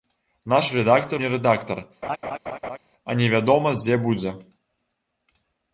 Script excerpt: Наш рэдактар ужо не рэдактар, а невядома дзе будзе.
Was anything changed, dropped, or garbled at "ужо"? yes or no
yes